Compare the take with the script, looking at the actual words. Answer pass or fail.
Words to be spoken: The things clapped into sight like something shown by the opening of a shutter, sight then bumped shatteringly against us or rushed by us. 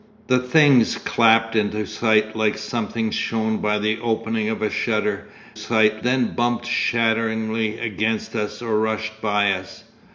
pass